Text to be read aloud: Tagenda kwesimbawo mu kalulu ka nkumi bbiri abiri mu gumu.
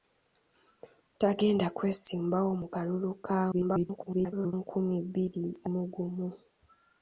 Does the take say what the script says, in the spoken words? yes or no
no